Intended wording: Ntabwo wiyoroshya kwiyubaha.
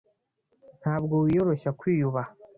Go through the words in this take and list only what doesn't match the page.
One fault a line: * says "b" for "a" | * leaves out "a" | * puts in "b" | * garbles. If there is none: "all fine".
all fine